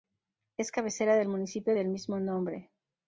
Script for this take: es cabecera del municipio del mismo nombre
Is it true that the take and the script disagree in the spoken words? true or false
false